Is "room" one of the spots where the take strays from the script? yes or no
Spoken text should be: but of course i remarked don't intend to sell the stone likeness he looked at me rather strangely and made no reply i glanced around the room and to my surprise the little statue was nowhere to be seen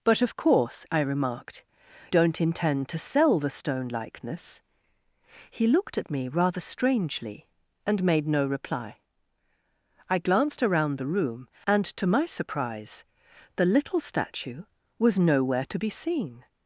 no